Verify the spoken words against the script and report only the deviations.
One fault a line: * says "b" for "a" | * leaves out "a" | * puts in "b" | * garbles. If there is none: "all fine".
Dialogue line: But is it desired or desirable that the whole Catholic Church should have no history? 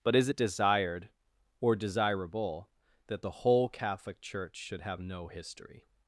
all fine